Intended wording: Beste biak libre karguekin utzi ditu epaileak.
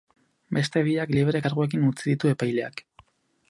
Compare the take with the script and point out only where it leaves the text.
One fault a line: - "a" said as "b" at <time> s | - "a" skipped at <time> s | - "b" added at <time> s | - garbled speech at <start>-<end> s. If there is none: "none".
none